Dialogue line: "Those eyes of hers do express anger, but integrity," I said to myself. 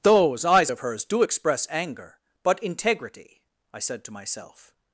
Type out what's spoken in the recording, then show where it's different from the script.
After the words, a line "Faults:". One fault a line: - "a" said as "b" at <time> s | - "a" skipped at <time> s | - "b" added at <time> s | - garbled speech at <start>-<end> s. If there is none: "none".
"Those eyes of hers do express anger, but integrity," I said to myself.
Faults:
none